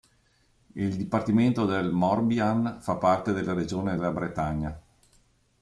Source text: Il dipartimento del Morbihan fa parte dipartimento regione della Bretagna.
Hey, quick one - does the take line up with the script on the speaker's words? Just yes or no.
no